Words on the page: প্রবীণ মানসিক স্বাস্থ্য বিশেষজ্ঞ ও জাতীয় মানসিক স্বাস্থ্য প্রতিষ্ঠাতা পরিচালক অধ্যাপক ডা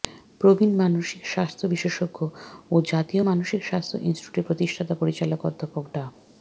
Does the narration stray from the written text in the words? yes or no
yes